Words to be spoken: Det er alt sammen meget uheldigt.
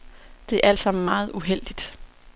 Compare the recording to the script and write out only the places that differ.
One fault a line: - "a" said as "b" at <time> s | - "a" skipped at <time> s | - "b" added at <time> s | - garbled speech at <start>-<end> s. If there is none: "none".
none